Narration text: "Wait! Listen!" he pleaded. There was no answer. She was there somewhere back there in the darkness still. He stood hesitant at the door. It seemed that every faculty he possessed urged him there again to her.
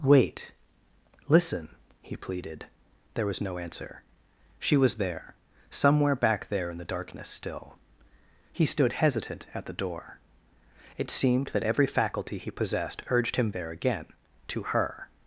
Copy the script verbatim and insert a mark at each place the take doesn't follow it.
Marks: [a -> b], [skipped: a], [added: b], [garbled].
"Wait! Listen!" he pleaded. There was no answer. She was there somewhere back there in the darkness still. He stood hesitant at the door. It seemed that every faculty he possessed urged him there again to her.